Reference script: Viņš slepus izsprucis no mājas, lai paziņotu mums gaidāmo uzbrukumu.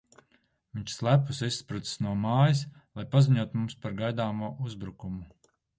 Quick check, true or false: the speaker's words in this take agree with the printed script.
false